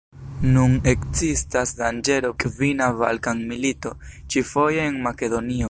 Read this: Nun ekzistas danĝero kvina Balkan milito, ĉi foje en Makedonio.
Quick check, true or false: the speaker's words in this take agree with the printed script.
true